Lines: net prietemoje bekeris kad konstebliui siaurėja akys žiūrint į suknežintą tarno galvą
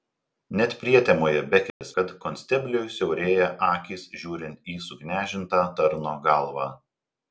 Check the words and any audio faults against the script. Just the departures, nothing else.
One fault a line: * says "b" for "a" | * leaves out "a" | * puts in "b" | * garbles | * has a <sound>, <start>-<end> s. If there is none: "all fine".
* has a dropout, 1.7-1.8 s